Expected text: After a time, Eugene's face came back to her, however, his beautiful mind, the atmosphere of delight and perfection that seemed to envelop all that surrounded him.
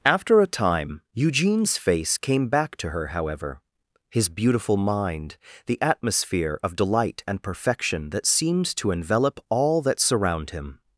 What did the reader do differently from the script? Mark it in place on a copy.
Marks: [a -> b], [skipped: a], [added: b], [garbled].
After a time, Eugene's face came back to her, however, his beautiful mind, the atmosphere of delight and perfection that seemed to envelop all that [surrounded -> surround] him.